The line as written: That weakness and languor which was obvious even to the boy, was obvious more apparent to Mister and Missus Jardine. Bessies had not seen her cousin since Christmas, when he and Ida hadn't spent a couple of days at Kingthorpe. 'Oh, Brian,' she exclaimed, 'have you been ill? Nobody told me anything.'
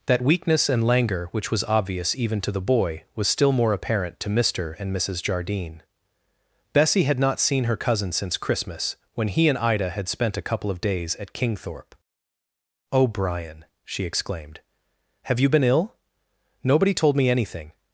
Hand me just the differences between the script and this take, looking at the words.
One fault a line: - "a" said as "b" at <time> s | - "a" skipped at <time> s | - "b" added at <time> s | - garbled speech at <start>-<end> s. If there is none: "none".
- "obvious" said as "still" at 3.3 s
- "Bessies" said as "Bessie" at 6.7 s
- "hadn't" said as "had" at 9.9 s